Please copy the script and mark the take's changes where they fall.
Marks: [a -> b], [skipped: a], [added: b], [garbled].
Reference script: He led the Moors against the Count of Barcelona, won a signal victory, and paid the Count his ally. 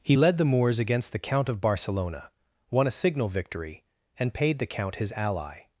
He led the Moors against the Count of Barcelona, won a signal victory, and paid the Count his ally.